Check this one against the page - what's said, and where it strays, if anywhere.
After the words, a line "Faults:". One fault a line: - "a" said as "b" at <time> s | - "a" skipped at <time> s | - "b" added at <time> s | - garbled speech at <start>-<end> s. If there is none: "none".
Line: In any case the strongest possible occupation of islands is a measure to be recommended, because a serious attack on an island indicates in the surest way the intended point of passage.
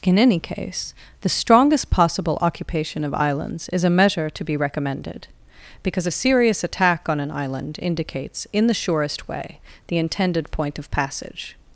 In any case the strongest possible occupation of islands is a measure to be recommended, because a serious attack on an island indicates in the surest way the intended point of passage.
Faults:
none